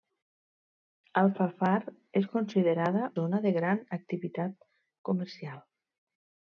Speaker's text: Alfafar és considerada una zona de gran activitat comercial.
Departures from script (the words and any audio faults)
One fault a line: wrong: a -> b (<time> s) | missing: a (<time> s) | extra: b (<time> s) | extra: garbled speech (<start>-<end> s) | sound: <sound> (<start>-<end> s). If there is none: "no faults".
missing: una (3.1 s)